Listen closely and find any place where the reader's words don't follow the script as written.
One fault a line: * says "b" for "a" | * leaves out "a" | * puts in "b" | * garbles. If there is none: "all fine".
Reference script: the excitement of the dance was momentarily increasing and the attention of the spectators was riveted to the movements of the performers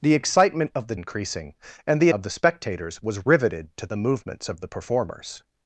* leaves out "dance was momentarily"
* leaves out "attention"